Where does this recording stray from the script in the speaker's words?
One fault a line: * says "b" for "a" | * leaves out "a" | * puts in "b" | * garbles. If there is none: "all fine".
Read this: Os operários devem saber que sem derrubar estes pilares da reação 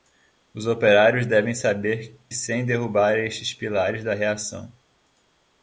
* leaves out "que"